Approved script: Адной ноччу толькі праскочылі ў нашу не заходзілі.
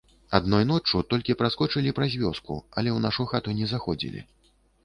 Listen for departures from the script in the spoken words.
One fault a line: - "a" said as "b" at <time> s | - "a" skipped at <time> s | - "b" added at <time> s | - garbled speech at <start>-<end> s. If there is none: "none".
- "праз вёску але" added at 2.0 s
- "хату" added at 3.3 s